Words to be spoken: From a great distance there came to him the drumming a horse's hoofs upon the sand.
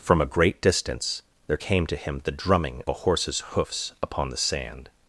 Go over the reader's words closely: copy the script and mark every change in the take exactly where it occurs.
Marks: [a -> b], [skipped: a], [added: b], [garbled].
From a great distance there came to him the drumming a horse's hoofs upon the sand.